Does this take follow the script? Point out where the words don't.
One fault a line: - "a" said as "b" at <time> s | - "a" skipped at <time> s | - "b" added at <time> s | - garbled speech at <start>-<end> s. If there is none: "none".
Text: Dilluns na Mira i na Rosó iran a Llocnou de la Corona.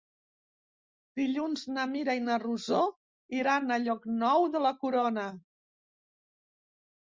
none